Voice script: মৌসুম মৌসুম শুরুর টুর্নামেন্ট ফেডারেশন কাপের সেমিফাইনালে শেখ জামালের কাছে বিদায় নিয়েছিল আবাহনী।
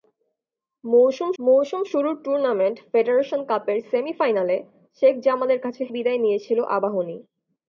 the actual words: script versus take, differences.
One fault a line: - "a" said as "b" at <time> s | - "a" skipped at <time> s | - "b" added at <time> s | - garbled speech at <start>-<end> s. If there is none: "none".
none